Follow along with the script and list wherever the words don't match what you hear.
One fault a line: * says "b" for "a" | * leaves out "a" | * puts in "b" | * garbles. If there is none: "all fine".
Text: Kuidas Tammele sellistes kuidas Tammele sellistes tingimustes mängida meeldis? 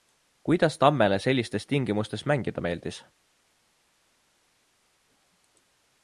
* leaves out "kuidas Tammele sellistes"